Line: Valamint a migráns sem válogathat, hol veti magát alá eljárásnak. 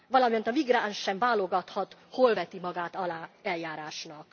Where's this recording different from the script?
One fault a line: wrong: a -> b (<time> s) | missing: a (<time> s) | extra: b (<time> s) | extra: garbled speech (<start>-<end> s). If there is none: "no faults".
no faults